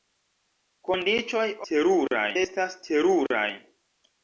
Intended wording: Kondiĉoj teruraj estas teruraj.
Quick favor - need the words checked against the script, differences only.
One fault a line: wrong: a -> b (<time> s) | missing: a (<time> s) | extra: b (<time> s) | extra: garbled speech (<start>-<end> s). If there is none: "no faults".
no faults